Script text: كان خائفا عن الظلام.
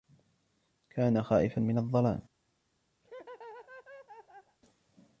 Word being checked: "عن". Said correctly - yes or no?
no